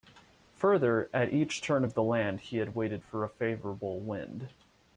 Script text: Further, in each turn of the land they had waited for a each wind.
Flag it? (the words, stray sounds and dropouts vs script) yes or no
yes